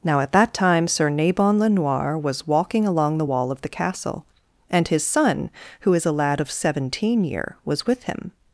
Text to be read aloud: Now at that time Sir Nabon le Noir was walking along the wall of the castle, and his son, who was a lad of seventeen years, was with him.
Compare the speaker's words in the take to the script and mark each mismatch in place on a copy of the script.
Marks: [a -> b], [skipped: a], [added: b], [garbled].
Now at that time Sir Nabon le Noir was walking along the wall of the castle, and his son, who [was -> is] a lad of seventeen [years, -> year] was with him.